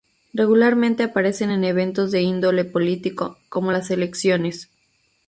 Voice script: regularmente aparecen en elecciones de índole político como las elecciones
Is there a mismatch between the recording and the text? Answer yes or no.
yes